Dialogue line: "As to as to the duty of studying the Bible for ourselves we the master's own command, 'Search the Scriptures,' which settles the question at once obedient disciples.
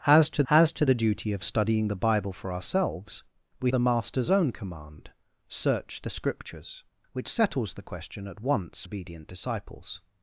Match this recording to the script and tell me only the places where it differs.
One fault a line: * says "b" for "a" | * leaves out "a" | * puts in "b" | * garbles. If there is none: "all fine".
all fine